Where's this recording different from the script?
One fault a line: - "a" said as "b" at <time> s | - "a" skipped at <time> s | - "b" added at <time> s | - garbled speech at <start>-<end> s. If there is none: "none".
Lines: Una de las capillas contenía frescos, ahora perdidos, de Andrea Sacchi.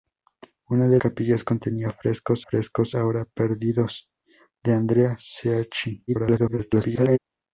- "las" skipped at 1.0 s
- "frescos" added at 2.4 s
- garbled speech at 6.1-7.2 s